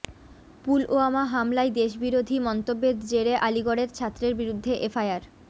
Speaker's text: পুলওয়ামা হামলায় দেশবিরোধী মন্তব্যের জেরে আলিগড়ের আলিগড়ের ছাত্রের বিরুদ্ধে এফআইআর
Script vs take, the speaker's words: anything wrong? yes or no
yes